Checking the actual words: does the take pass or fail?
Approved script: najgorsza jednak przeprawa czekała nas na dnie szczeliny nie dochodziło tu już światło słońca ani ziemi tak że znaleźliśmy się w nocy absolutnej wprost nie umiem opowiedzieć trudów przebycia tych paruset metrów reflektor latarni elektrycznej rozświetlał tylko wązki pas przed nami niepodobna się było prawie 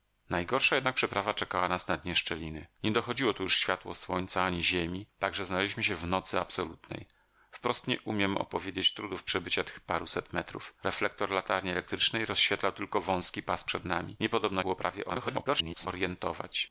fail